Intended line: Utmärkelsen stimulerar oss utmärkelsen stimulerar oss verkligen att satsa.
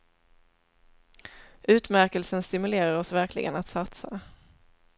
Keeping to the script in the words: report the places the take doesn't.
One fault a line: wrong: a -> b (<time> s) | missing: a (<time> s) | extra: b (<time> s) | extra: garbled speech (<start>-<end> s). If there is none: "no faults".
missing: utmärkelsen stimulerar oss (3.1 s)